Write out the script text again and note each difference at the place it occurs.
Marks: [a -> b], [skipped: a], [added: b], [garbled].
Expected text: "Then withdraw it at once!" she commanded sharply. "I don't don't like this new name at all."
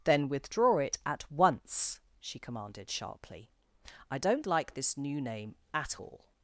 "Then withdraw it at once!" she commanded sharply. "I don't [skipped: don't] like this new name at all."